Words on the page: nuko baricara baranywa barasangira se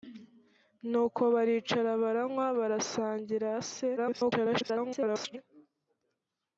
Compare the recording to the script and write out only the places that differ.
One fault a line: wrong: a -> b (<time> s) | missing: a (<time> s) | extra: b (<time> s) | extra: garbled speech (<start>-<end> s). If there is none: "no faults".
extra: garbled speech (4.0-5.4 s)